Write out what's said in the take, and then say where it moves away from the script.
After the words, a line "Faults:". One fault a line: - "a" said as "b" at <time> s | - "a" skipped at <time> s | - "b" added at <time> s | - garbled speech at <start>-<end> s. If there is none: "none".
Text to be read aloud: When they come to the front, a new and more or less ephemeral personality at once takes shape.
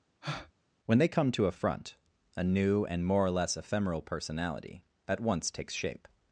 When they come to a front, a new and more or less ephemeral personality at once takes shape.
Faults:
- "the" said as "a" at 1.5 s